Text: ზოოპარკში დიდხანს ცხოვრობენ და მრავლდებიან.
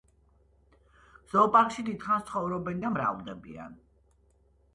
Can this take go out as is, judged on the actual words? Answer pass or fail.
pass